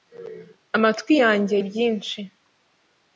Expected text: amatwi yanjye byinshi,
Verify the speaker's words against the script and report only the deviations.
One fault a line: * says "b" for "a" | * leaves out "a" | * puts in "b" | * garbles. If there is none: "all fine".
all fine